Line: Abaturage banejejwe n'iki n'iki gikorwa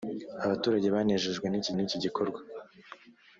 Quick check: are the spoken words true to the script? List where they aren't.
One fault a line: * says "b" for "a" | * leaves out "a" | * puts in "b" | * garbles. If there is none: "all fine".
all fine